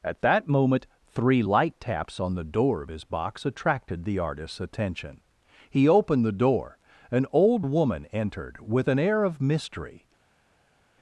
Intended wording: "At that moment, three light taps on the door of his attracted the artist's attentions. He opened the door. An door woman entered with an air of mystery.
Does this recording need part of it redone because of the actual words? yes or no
yes